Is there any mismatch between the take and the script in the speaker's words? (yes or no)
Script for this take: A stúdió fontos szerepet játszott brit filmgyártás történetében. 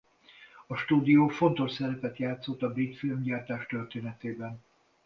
yes